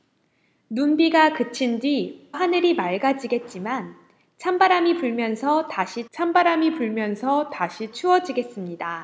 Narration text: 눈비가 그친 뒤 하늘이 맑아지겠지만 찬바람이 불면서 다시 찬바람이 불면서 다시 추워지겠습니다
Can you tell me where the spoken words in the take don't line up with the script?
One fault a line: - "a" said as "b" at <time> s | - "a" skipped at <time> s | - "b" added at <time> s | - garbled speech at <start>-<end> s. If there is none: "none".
none